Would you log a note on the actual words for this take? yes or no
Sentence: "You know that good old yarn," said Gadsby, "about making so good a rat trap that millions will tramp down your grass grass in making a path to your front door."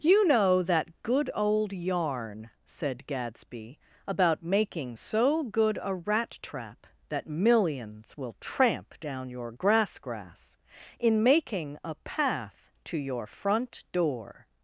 no